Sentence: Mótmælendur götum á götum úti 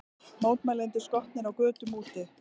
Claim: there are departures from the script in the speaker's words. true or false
true